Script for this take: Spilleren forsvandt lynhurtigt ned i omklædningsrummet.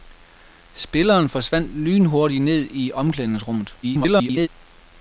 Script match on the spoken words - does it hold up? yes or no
no